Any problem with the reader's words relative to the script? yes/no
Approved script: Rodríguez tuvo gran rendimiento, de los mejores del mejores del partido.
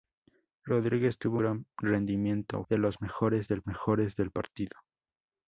no